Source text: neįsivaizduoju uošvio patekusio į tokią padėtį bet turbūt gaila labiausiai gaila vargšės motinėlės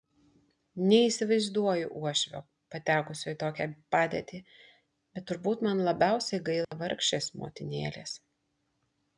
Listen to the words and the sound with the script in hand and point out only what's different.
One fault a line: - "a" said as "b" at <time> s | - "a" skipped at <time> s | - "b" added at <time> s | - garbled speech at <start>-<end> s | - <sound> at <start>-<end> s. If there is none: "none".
- "gaila" said as "man" at 5.7 s
- dropout at 6.6-6.7 s